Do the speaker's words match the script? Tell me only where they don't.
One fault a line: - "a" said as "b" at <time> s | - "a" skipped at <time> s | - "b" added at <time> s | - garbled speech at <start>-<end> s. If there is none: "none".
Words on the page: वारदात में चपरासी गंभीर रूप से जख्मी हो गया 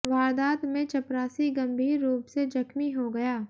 none